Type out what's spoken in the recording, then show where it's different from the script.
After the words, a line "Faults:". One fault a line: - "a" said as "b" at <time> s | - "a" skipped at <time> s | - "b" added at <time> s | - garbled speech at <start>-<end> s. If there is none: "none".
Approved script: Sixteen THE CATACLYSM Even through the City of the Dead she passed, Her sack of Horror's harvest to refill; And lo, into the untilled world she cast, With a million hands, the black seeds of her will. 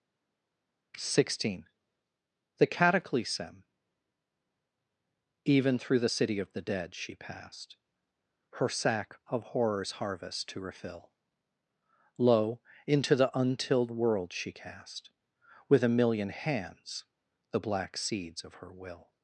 Sixteen THE CATACLYSM Even through the City of the Dead she passed, Her sack of Horror's harvest to refill; lo, into the untilled world she cast, With a million hands, the black seeds of her will.
Faults:
- "And" skipped at 11.1 s